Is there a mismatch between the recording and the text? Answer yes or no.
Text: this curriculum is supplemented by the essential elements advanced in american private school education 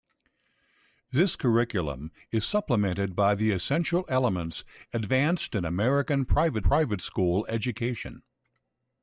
yes